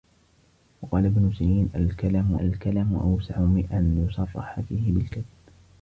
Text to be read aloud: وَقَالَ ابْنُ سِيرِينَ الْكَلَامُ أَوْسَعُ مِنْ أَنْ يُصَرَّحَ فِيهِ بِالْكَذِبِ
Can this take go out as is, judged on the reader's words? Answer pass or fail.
fail